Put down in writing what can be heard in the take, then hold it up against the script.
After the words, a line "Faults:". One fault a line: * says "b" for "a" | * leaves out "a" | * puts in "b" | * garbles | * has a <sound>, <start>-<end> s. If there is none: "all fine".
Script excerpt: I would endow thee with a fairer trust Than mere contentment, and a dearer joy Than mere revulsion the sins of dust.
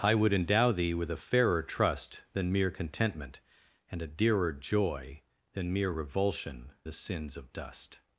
I would endow thee with a fairer trust Than mere contentment, and a dearer joy Than mere revulsion the sins of dust.
Faults:
all fine